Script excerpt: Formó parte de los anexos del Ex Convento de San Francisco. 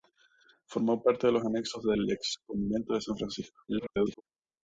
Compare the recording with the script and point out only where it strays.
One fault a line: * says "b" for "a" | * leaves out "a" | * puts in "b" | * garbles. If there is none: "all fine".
* garbles